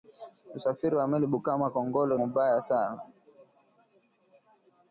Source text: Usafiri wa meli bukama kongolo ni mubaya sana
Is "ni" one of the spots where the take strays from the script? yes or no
yes